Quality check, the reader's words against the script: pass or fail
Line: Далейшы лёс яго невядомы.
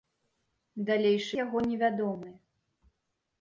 fail